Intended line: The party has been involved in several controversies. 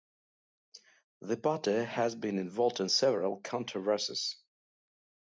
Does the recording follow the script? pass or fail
pass